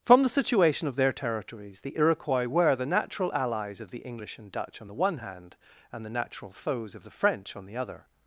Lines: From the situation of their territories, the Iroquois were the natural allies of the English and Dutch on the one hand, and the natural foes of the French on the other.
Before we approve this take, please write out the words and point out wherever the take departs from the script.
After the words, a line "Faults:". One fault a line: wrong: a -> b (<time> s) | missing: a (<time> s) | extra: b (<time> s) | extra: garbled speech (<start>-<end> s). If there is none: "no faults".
From the situation of their territories, the Iroquois were the natural allies of the English and Dutch on the one hand, and the natural foes of the French on the other.
Faults:
no faults